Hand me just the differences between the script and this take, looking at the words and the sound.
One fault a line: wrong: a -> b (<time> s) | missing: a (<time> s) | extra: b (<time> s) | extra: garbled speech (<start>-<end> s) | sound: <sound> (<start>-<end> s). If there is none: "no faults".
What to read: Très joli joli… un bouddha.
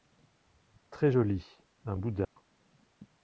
missing: joli (1.5 s)
sound: dropout (2.2-2.4 s)